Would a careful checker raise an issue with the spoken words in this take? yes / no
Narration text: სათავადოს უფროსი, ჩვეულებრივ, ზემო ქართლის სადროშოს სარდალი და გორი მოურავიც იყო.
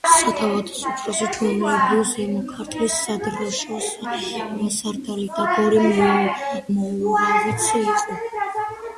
no